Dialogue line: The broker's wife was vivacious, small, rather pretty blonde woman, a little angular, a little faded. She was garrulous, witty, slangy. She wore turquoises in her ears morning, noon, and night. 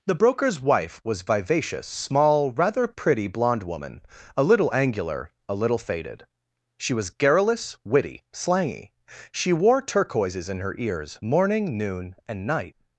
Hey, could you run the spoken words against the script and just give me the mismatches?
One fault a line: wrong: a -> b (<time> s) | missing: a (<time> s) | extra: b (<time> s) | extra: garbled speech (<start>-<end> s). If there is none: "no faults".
no faults